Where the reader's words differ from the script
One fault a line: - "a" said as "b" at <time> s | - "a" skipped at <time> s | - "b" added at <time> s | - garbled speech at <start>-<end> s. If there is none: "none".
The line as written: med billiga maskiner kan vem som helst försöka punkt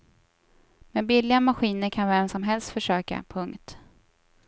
none